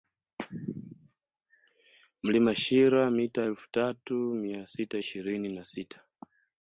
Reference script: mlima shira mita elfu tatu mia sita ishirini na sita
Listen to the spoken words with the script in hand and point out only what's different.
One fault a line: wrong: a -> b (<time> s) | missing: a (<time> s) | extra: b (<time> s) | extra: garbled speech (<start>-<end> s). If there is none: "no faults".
no faults